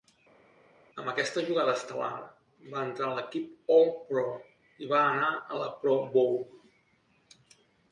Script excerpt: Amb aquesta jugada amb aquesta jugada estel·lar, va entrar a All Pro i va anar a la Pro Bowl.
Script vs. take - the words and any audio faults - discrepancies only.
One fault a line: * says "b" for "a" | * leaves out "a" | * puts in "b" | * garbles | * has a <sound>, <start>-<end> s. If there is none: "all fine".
* leaves out "amb aquesta jugada"
* puts in "l'equip"